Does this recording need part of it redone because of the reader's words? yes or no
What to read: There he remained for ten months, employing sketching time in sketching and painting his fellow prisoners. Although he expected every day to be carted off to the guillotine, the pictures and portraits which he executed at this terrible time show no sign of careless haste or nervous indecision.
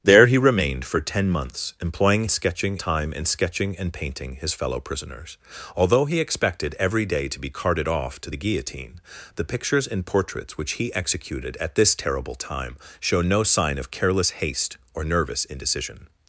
no